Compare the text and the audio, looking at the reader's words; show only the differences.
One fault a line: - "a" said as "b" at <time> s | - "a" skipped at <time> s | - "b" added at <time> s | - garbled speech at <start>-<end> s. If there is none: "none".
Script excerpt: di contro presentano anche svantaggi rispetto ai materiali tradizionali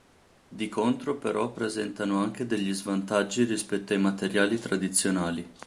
- "però" added at 1.2 s
- "degli" added at 2.4 s